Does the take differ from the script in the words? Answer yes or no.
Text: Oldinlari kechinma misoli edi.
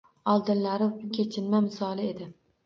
no